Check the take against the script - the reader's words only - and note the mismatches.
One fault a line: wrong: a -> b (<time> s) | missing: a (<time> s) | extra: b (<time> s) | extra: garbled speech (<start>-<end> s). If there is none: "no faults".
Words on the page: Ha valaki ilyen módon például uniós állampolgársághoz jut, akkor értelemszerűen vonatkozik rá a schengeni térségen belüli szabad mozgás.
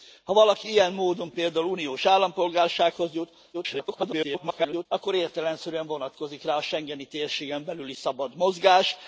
extra: garbled speech (3.5-4.9 s)